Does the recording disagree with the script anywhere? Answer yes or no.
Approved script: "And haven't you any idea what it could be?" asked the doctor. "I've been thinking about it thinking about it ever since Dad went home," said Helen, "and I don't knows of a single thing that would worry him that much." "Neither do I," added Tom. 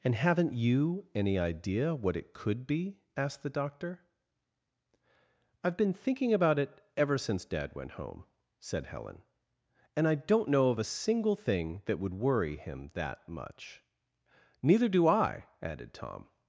yes